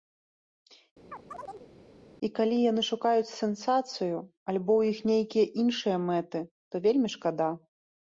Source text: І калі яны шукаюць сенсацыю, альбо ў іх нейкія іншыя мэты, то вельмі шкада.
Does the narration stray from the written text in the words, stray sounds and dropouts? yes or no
yes